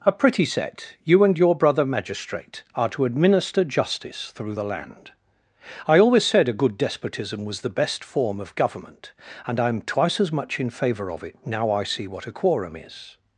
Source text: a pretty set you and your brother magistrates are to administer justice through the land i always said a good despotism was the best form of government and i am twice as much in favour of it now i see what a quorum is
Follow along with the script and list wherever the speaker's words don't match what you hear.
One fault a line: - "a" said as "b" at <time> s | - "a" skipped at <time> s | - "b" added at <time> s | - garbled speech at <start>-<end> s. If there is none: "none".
- "magistrates" said as "magistrate" at 1.9 s